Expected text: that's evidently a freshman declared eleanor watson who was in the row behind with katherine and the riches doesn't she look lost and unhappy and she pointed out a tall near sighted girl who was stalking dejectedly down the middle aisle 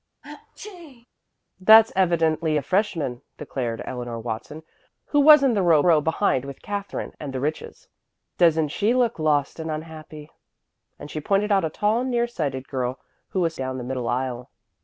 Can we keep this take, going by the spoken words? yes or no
no